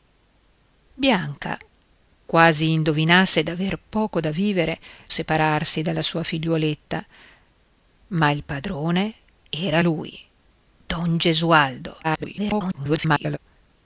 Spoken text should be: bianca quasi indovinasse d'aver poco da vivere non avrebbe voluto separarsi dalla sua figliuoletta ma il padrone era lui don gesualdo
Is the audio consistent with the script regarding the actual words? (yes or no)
no